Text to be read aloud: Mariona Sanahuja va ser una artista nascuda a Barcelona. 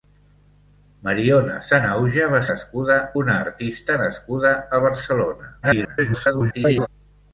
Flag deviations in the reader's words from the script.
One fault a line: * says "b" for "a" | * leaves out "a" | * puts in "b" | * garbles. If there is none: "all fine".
* says "nascuda" for "ser"
* garbles